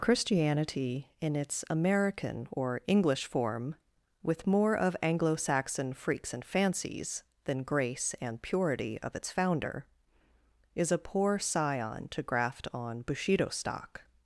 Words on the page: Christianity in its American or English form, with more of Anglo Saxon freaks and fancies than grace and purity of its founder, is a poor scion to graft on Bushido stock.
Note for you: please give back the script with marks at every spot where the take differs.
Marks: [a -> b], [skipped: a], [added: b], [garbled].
Christianity in its American or English form, with more of Anglo Saxon freaks and fancies than grace and purity of its founder, is a poor scion to graft on Bushido stock.